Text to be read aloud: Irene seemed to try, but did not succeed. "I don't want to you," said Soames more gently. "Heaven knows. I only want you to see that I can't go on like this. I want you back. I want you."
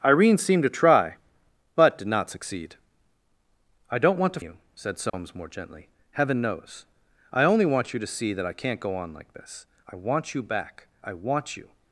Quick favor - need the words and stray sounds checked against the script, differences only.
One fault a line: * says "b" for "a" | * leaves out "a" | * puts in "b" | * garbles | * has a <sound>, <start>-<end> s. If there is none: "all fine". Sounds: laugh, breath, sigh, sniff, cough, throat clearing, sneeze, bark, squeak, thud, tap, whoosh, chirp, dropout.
* has a dropout, 5.1-5.1 s